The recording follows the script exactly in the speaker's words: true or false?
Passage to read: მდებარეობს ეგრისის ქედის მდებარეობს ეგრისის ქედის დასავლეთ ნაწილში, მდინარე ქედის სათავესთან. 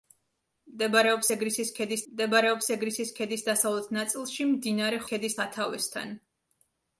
true